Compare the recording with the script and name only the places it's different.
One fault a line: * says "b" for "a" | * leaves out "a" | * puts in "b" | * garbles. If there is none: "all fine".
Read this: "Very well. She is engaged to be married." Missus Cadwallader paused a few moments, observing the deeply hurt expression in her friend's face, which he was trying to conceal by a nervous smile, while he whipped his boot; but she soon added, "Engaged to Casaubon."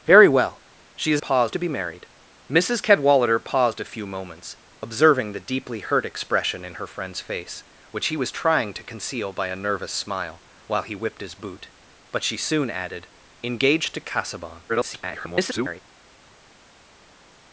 * says "paused" for "engaged"
* garbles